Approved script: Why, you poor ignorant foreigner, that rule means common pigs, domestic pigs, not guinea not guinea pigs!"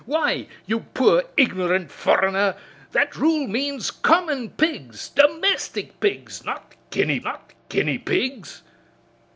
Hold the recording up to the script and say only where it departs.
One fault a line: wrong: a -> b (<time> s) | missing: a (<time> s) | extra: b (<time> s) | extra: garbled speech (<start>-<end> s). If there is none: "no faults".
no faults